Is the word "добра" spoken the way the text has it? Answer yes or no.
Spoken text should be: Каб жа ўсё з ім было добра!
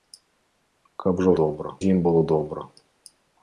yes